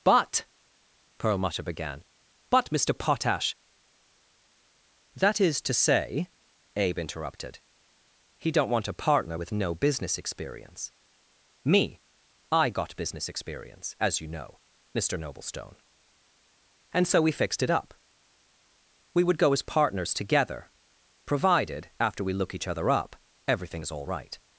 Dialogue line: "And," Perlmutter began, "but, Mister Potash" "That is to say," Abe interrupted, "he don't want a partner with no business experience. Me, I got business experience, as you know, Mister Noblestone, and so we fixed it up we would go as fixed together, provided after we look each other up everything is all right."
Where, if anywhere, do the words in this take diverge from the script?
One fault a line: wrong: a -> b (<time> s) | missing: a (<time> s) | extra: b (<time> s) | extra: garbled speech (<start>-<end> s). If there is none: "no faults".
wrong: And -> But (0.0 s)
wrong: fixed -> partners (19.6 s)